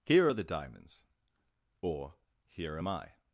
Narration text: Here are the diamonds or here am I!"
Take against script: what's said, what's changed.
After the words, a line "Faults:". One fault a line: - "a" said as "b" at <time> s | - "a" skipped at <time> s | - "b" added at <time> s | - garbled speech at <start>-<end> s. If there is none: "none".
Here are the diamonds or here am I!"
Faults:
none